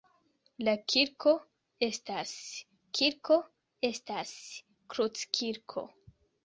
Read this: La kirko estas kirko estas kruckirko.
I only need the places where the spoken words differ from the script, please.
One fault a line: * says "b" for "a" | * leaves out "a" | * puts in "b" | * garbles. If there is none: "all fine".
all fine